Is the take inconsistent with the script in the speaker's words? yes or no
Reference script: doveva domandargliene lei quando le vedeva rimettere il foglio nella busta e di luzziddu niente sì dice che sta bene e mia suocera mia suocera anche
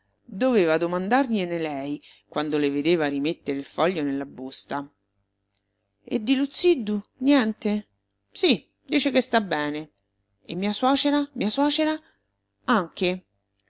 no